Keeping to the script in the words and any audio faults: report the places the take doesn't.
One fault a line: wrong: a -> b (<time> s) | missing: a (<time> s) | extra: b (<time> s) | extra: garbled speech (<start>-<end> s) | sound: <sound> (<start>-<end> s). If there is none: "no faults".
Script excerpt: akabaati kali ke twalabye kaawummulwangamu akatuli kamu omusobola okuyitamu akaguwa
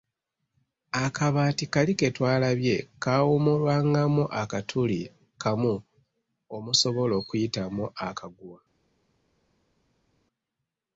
no faults